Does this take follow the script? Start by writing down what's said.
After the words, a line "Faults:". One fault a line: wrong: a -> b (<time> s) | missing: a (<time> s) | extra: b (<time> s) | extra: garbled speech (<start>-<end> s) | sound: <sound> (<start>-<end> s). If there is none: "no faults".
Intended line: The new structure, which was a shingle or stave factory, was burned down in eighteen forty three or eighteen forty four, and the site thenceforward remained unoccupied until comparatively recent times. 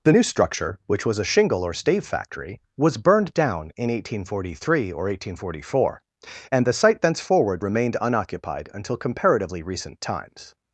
The new structure, which was a shingle or stave factory, was burned down in eighteen forty three or eighteen forty four, and the site thenceforward remained unoccupied until comparatively recent times.
Faults:
no faults